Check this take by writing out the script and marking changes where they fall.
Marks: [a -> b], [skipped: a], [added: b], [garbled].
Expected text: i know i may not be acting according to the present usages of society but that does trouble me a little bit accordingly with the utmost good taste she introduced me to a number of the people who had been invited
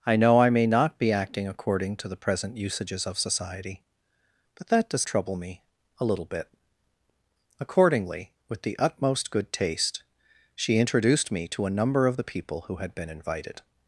i know i may not be acting according to the present usages of society but that does trouble me a little bit accordingly with the utmost good taste she introduced me to a number of the people who had been invited